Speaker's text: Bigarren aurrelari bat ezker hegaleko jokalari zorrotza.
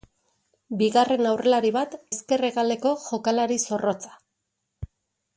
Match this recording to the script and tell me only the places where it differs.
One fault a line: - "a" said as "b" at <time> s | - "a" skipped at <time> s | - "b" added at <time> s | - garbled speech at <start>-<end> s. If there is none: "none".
none